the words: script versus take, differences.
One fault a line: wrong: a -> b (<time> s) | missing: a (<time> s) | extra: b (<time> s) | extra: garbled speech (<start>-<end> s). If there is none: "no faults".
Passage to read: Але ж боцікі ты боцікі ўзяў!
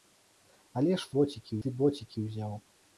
no faults